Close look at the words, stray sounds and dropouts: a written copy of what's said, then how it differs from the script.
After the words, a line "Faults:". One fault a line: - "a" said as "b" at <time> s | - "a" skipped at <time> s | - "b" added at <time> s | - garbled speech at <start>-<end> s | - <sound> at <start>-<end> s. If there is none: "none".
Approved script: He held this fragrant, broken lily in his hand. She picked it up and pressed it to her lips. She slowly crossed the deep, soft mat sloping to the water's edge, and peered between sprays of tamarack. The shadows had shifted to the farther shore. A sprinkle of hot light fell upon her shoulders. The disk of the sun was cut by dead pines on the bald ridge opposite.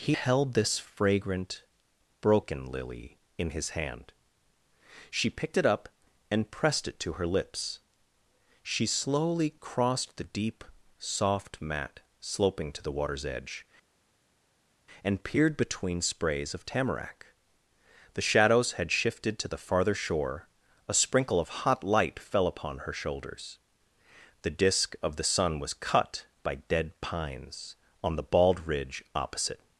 He held this fragrant, broken lily in his hand. She picked it up and pressed it to her lips. She slowly crossed the deep, soft mat sloping to the water's edge, and peered between sprays of tamarack. The shadows had shifted to the farther shore. A sprinkle of hot light fell upon her shoulders. The disk of the sun was cut by dead pines on the bald ridge opposite.
Faults:
none